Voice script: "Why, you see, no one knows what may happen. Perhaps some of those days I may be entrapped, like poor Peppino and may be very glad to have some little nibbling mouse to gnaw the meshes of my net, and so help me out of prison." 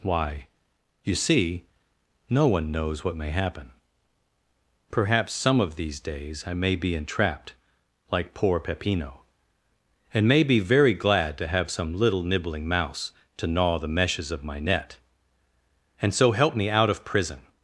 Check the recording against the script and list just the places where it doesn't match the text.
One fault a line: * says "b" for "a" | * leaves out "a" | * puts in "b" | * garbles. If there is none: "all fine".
* says "these" for "those"